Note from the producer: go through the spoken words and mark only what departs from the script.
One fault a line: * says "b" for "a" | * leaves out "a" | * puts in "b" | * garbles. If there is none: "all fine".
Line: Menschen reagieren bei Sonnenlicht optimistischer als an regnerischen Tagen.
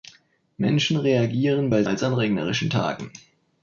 * leaves out "Sonnenlicht optimistischer"